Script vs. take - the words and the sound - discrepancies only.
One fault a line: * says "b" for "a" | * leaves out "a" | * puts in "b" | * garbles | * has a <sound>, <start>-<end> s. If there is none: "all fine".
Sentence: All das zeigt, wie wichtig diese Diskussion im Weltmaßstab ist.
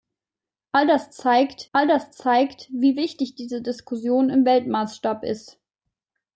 * puts in "all das zeigt"